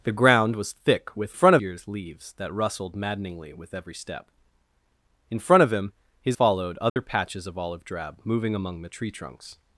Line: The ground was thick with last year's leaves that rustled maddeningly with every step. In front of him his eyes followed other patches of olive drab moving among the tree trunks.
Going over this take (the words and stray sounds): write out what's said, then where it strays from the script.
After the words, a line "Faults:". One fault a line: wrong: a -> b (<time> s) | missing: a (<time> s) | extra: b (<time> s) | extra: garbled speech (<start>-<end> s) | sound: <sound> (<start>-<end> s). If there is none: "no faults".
The ground was thick with front year's leaves that rustled maddeningly with every step. In front of him his followed other patches of olive drab moving among the tree trunks.
Faults:
wrong: last -> front (1.3 s)
missing: eyes (6.4 s)
sound: dropout (6.9-7.0 s)